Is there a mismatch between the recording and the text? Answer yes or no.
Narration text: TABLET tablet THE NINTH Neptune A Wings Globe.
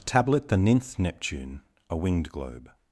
yes